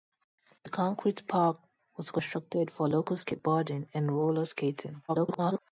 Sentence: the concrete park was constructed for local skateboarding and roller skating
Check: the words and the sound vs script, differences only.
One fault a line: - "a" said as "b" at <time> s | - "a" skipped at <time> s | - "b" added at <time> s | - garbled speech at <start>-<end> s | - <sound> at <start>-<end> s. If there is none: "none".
- garbled speech at 5.1-5.6 s